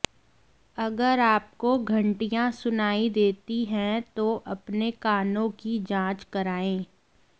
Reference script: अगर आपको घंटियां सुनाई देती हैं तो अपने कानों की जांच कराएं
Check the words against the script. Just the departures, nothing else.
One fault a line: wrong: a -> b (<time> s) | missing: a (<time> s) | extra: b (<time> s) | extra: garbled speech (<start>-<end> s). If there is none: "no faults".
no faults